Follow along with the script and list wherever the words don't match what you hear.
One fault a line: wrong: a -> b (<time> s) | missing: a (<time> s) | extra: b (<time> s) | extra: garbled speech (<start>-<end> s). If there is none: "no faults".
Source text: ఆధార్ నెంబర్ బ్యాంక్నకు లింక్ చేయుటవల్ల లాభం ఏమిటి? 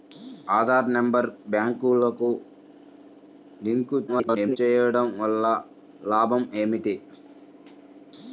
extra: garbled speech (4.1-4.6 s)